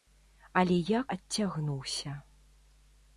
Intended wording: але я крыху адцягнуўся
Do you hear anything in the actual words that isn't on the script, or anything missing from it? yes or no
yes